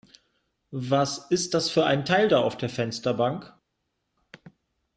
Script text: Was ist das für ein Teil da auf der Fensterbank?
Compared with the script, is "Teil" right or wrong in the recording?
right